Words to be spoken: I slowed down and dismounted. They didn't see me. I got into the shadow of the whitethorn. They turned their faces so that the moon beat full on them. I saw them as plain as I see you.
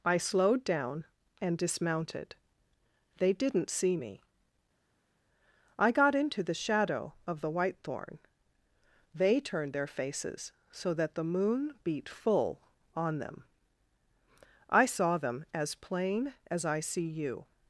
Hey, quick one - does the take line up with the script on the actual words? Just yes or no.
yes